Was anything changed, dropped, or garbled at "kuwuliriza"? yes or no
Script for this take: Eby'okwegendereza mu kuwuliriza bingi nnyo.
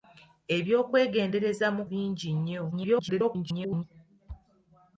yes